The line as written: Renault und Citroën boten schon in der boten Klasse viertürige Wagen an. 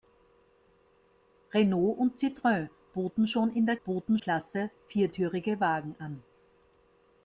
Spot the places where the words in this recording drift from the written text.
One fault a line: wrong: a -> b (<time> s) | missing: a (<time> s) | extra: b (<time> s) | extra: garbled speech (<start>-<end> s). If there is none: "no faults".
no faults